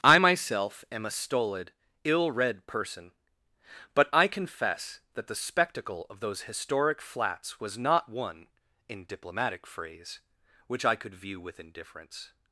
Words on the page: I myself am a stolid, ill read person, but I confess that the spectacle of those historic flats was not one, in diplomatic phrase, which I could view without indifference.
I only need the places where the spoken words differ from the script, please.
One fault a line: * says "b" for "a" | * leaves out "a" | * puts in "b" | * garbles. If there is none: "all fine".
* says "with" for "without"